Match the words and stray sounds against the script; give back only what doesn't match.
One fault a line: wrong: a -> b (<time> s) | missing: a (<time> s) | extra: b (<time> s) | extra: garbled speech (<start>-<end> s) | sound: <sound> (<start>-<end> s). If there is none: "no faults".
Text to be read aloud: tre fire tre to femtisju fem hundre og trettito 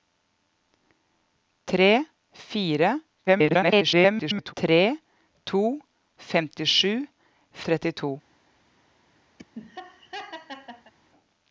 extra: garbled speech (3.3-4.5 s)
missing: fem hundre og (6.9 s)
sound: laugh (9.4-10.9 s)